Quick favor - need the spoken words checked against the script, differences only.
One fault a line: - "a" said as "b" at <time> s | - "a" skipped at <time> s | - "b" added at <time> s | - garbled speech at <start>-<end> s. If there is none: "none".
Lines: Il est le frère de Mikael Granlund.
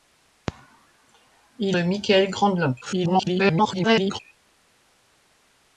- "est le frère" skipped at 1.8 s
- garbled speech at 2.8-4.2 s